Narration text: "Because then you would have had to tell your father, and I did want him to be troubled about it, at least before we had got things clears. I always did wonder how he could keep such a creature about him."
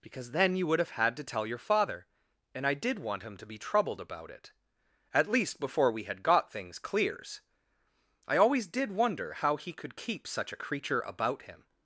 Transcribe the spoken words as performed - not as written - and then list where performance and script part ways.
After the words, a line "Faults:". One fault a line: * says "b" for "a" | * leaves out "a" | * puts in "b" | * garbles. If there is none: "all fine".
"Because then you would have had to tell your father, and I did want him to be troubled about it, at least before we had got things clears. I always did wonder how he could keep such a creature about him."
Faults:
all fine